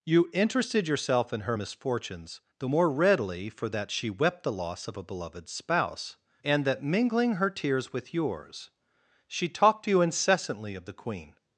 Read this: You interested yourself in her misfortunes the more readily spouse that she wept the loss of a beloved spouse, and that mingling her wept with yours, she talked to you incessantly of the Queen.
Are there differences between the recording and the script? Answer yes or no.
yes